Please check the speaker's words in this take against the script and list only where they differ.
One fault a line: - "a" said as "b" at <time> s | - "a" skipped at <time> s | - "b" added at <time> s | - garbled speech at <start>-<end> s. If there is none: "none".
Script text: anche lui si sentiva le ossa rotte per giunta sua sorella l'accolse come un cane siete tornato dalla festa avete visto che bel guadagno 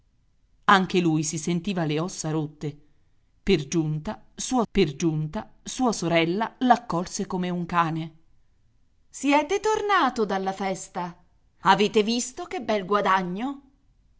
- "per giunta sua" added at 4.7 s